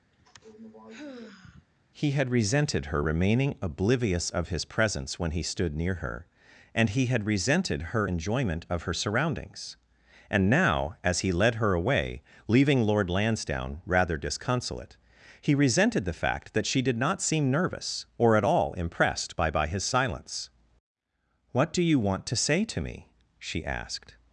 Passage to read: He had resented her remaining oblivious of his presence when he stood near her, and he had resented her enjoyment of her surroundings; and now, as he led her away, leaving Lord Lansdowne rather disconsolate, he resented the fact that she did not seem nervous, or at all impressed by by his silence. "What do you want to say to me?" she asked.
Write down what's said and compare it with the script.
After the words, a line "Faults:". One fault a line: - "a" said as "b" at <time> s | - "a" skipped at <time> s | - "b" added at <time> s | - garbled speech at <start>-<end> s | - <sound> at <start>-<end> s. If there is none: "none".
He had resented her remaining oblivious of his presence when he stood near her, and he had resented her enjoyment of her surroundings; and now, as he led her away, leaving Lord Lansdowne rather disconsolate, he resented the fact that she did not seem nervous, or at all impressed by by his silence. "What do you want to say to me?" she asked.
Faults:
- sigh at 0.1-1.7 s